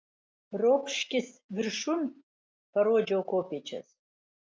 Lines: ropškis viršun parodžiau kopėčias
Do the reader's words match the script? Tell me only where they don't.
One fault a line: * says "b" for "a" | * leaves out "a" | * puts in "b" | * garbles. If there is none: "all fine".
all fine